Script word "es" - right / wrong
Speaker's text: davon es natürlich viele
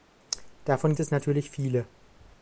right